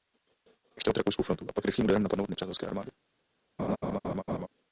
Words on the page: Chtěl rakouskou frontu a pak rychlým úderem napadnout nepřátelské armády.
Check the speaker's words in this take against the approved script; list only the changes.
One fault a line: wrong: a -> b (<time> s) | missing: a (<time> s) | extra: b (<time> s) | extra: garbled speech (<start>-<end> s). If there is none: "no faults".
no faults